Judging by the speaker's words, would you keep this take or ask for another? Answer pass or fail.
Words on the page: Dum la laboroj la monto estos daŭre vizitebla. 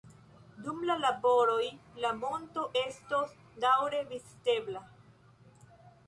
pass